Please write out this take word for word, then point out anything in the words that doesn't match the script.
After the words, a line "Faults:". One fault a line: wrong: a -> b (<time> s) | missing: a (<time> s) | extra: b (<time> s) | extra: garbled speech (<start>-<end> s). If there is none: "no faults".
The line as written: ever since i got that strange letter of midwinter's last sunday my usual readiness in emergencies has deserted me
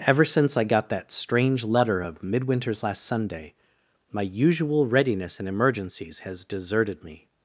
ever since i got that strange letter of midwinter's last sunday my usual readiness in emergencies has deserted me
Faults:
no faults